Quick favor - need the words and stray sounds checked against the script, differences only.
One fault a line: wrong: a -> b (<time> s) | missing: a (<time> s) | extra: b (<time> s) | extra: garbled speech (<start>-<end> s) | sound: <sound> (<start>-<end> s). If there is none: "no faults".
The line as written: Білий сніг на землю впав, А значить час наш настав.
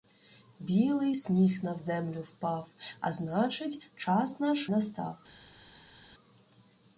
no faults